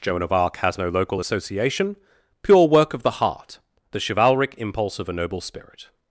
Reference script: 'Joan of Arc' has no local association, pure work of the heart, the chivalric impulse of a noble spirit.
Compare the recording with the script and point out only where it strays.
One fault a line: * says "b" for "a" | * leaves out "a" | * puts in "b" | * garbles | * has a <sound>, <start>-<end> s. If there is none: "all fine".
all fine